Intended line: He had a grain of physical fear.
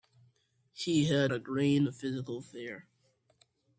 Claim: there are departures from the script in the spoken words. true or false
false